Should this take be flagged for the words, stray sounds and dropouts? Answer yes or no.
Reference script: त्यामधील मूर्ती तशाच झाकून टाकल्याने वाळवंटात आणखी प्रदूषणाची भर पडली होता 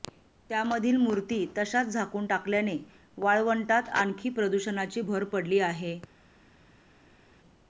yes